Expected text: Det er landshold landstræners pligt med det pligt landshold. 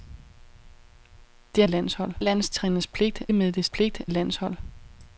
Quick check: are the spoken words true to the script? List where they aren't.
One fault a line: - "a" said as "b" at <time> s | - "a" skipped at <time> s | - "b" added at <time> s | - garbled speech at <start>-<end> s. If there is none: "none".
none